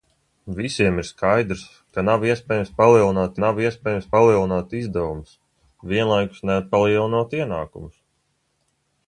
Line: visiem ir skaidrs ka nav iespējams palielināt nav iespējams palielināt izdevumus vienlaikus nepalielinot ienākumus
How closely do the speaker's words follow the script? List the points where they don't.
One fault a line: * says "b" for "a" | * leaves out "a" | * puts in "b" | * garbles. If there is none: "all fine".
all fine